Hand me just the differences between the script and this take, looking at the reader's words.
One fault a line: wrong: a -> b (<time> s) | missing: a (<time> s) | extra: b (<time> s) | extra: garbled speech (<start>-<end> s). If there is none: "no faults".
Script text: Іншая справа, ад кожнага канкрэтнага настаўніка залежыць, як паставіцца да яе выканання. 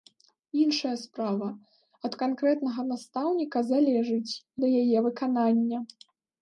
missing: кожнага (2.1 s)
missing: як паставіцца (4.3 s)